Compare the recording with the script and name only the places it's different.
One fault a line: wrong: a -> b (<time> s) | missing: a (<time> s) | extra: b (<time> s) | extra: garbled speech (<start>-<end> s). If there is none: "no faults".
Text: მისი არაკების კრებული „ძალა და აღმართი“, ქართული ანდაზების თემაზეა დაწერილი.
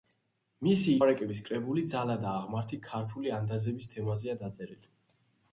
no faults